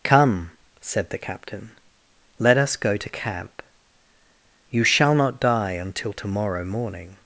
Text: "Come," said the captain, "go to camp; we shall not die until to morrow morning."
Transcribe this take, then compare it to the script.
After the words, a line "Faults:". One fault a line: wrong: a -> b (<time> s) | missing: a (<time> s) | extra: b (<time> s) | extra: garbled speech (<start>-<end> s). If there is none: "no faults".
"Come," said the captain, "let us go to camp; you shall not die until to morrow morning."
Faults:
extra: let us (2.4 s)
wrong: we -> you (4.7 s)